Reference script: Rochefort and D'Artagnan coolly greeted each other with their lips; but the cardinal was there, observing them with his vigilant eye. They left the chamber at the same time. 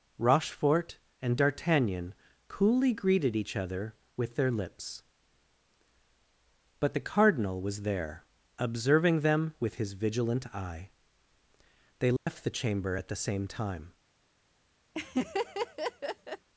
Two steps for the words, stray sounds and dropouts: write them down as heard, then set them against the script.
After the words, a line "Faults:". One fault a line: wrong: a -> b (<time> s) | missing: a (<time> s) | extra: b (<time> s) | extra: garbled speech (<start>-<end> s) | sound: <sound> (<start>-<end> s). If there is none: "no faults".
Rochefort and D'Artagnan coolly greeted each other with their lips; but the cardinal was there, observing them with his vigilant eye. They left the chamber at the same time.
Faults:
sound: dropout (12.2-12.3 s)
sound: laugh (14.9-16.5 s)